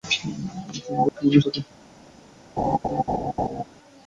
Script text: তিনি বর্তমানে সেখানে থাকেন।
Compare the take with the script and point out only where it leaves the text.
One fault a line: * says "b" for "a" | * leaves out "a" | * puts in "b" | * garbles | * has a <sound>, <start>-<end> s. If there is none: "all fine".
* has a dropout, 1.1-1.2 s
* leaves out "সেখানে"
* has a laugh, 2.6-3.6 s